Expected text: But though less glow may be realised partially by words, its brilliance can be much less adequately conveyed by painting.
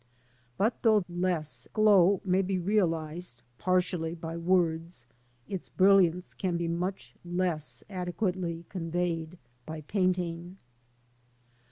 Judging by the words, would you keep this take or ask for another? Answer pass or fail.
pass